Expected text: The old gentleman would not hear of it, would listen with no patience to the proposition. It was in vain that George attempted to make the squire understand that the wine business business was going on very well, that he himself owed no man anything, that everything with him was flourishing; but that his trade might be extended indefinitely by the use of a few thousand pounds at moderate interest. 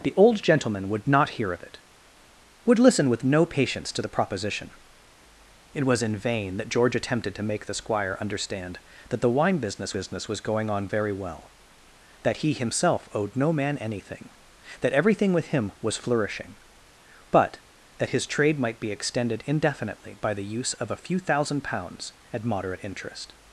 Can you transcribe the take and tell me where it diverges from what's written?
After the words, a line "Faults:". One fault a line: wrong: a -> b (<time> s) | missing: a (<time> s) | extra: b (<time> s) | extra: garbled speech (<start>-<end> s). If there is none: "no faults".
The old gentleman would not hear of it, would listen with no patience to the proposition. It was in vain that George attempted to make the squire understand that the wine business business was going on very well, that he himself owed no man anything, that everything with him was flourishing; but that his trade might be extended indefinitely by the use of a few thousand pounds at moderate interest.
Faults:
no faults